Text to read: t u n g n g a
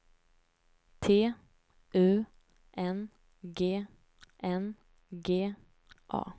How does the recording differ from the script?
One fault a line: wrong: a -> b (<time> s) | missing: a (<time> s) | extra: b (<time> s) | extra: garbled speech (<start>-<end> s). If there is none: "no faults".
no faults